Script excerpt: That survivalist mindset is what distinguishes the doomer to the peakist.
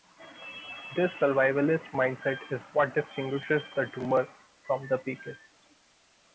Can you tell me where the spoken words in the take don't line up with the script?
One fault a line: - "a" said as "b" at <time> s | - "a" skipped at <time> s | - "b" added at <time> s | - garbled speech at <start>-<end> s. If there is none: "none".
- "That" said as "This" at 0.9 s
- "to" said as "from" at 4.6 s